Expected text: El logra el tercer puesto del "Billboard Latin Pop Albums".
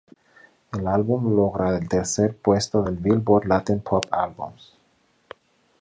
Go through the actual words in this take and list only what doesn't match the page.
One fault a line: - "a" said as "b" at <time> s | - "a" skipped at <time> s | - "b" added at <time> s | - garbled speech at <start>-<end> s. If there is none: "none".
- "álbum" added at 0.9 s